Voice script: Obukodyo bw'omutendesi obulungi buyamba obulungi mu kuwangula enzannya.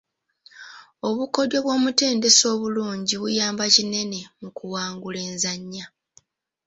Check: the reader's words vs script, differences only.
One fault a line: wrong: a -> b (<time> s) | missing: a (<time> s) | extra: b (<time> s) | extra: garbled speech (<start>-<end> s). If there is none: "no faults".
wrong: obulungi -> kinene (3.8 s)